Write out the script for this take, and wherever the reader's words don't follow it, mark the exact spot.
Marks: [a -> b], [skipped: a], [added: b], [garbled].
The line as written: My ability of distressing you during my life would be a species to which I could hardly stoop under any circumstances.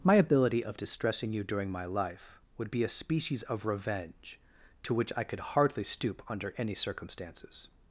My ability of distressing you during my life would be a species [added: of revenge] to which I could hardly stoop under any circumstances.